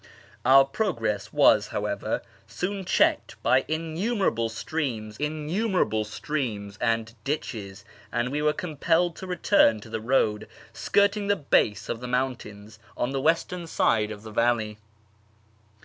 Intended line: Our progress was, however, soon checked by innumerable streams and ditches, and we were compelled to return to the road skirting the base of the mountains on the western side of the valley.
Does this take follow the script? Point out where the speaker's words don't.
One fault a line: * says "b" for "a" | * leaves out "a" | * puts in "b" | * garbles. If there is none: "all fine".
* puts in "innumerable streams"